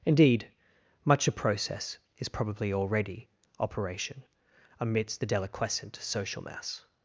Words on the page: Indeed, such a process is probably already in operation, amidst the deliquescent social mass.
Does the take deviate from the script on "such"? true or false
true